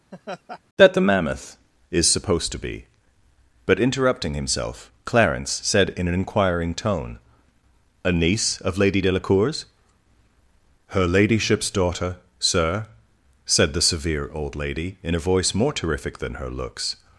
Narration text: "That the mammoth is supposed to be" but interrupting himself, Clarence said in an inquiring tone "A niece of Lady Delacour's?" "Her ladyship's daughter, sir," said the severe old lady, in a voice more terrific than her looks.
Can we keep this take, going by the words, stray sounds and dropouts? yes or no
no